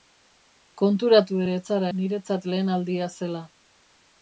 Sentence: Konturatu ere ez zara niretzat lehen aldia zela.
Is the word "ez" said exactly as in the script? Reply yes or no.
yes